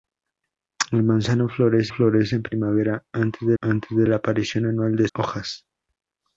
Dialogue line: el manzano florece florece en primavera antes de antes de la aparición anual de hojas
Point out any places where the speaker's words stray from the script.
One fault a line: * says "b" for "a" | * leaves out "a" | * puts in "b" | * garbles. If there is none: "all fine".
all fine